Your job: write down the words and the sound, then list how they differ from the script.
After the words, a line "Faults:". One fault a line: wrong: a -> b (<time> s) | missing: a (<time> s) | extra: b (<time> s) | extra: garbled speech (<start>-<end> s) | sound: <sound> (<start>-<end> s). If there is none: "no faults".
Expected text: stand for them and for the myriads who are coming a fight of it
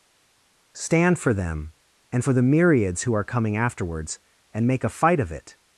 stand for them and for the myriads who are coming afterwards and make a fight of it
Faults:
extra: afterwards and make (3.6 s)